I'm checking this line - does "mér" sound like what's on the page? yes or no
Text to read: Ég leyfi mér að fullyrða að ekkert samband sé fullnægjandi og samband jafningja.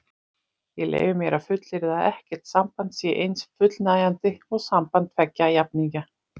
yes